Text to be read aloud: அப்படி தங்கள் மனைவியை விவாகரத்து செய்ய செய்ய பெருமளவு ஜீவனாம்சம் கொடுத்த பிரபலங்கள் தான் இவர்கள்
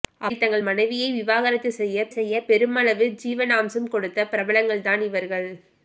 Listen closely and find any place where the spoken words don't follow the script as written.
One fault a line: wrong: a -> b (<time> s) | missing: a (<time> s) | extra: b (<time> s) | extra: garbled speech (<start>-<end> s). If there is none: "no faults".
no faults